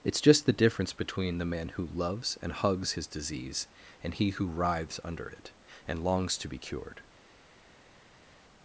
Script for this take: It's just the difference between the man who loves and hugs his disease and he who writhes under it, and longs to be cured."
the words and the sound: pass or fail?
pass